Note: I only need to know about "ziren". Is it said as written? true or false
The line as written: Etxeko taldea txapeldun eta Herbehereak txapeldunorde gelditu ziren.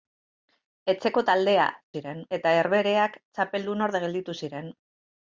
true